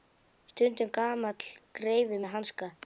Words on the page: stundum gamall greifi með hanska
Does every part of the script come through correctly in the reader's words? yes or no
yes